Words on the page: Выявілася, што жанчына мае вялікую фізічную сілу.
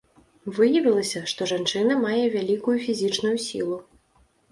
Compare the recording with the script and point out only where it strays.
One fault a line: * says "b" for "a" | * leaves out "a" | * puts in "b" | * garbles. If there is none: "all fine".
all fine